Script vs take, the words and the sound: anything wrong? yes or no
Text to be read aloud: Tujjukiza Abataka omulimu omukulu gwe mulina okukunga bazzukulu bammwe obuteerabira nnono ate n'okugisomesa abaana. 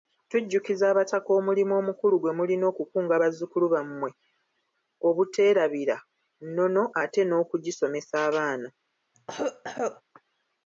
yes